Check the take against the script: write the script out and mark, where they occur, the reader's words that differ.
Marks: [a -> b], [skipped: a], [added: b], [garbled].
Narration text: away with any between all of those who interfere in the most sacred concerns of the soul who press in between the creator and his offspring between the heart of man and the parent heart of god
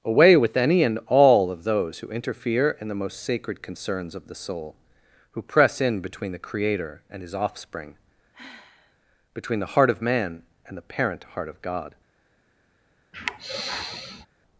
away with any [between -> and] all of those who interfere in the most sacred concerns of the soul who press in between the creator and his offspring between the heart of man and the parent heart of god